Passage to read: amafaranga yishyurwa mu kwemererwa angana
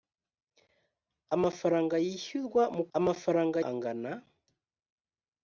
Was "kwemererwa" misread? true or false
true